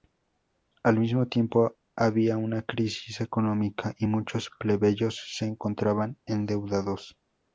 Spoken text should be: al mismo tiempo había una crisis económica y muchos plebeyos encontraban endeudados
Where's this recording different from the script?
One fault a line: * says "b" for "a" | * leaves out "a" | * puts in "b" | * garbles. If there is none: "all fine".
* puts in "se"